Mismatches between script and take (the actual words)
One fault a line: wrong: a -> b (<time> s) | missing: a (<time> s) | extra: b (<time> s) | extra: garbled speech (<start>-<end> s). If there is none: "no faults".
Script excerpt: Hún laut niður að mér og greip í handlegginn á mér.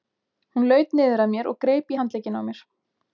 no faults